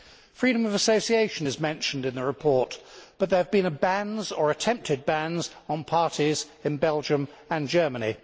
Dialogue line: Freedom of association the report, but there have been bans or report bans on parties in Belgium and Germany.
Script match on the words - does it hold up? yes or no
no